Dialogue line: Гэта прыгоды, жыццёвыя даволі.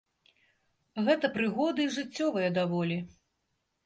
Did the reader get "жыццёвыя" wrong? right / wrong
right